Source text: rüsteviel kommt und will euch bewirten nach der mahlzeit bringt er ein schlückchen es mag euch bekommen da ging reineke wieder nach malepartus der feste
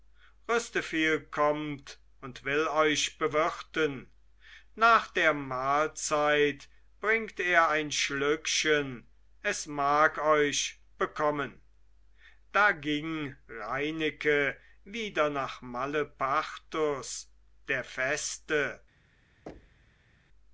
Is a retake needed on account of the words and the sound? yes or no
yes